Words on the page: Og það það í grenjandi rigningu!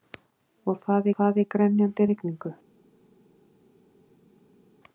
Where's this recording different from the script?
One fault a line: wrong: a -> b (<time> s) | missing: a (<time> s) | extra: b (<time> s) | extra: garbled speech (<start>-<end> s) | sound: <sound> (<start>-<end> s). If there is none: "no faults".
no faults